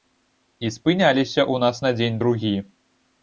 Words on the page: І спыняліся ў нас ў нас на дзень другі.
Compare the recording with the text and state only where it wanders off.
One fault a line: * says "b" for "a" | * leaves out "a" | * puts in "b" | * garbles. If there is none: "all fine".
* leaves out "ў нас"